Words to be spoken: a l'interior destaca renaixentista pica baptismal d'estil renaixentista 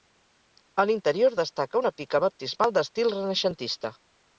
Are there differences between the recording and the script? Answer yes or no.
yes